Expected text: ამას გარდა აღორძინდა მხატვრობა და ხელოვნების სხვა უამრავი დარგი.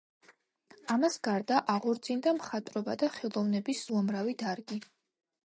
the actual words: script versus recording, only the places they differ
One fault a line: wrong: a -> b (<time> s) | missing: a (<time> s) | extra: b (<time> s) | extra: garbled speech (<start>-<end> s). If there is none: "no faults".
missing: სხვა (3.9 s)